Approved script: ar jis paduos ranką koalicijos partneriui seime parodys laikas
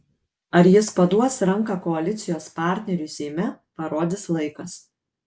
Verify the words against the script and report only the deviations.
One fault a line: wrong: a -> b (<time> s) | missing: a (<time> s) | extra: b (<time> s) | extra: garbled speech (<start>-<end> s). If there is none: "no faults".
no faults